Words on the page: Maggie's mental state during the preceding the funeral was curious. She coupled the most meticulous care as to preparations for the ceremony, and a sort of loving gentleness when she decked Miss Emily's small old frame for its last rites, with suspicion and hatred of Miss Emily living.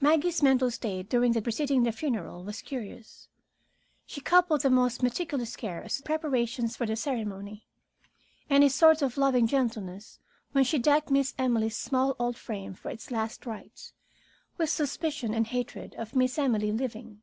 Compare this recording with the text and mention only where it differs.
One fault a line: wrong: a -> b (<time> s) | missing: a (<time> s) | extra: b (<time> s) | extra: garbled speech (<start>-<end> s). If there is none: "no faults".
no faults